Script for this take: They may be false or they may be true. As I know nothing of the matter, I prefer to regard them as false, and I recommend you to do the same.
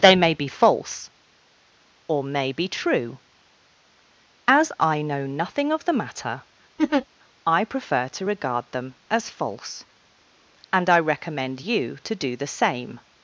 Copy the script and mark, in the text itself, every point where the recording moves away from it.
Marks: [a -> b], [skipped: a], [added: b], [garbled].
They may be false or [skipped: they] may be true. As I know nothing of the matter, I prefer to regard them as false, and I recommend you to do the same.